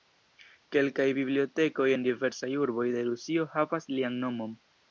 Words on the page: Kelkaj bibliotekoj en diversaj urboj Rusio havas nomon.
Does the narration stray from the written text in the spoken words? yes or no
yes